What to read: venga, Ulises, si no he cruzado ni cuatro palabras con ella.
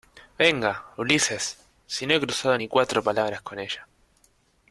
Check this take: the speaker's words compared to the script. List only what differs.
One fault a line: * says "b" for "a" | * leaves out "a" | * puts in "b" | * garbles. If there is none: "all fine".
all fine